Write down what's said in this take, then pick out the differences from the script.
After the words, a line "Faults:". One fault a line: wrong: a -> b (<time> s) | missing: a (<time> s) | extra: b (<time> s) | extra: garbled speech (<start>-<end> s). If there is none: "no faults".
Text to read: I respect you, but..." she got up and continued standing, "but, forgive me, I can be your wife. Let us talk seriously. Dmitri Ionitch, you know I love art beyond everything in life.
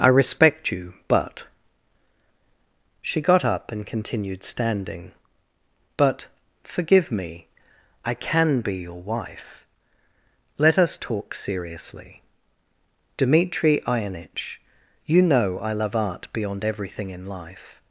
I respect you, but..." she got up and continued standing, "but, forgive me, I can be your wife. Let us talk seriously. Dmitri Ionitch, you know I love art beyond everything in life.
Faults:
no faults